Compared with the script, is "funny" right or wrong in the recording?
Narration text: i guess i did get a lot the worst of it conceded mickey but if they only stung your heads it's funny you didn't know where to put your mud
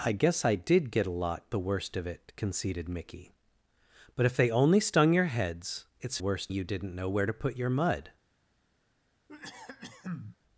wrong